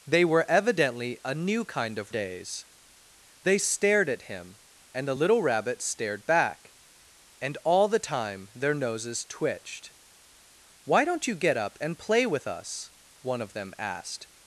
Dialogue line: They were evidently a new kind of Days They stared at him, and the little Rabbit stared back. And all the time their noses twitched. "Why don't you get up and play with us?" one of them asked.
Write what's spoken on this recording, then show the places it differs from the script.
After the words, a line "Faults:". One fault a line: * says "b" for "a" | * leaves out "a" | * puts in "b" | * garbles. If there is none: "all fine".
They were evidently a new kind of Days They stared at him, and the little Rabbit stared back. And all the time their noses twitched. "Why don't you get up and play with us?" one of them asked.
Faults:
all fine